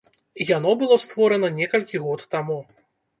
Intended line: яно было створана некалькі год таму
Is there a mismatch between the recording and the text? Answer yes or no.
no